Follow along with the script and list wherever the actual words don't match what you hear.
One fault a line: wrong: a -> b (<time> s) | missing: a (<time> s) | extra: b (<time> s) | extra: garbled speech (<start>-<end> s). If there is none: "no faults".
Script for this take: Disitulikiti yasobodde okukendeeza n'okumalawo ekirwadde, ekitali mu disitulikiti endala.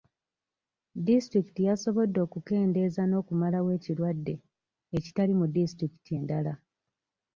no faults